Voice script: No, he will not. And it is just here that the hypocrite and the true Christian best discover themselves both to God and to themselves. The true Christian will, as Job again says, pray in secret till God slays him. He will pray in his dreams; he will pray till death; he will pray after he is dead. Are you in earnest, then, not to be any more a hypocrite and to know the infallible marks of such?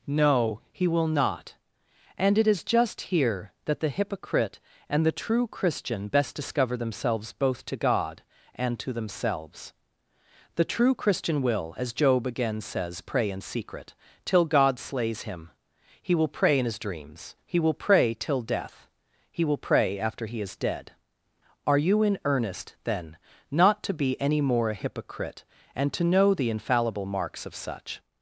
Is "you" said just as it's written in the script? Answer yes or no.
yes